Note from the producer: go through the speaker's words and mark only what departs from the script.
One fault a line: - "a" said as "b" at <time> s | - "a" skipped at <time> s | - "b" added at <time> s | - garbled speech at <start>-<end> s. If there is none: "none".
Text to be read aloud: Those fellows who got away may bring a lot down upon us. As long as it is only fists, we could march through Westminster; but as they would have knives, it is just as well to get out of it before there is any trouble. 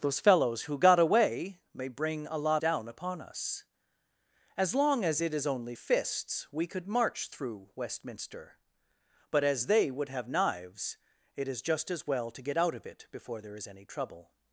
none